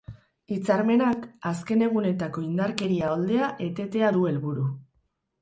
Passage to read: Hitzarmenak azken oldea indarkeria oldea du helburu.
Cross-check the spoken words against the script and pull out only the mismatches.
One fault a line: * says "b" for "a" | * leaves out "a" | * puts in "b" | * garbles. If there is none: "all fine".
* says "egunetako" for "oldea"
* puts in "etetea"